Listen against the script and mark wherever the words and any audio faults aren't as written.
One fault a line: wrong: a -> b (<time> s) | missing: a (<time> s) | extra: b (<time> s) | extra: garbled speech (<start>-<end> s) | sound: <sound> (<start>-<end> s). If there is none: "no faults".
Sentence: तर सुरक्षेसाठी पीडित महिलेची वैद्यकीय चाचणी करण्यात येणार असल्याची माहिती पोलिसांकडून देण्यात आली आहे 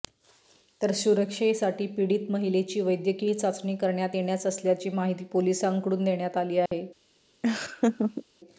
sound: dropout (6.7-6.7 s)
sound: laugh (7.4-8.2 s)